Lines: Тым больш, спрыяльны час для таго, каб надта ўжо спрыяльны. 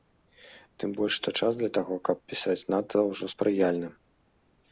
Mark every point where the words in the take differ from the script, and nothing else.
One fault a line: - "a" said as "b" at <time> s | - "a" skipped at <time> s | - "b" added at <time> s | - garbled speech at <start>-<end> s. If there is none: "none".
- "спрыяльны" said as "што" at 1.2 s
- "пісаць" added at 2.3 s